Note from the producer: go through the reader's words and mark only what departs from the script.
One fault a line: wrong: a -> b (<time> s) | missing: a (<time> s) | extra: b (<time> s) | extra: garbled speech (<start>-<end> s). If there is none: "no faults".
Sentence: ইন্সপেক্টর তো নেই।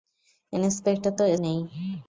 no faults